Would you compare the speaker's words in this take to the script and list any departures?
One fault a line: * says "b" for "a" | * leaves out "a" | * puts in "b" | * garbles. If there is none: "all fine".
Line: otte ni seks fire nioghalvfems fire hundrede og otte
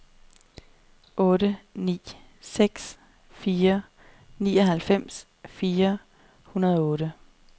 all fine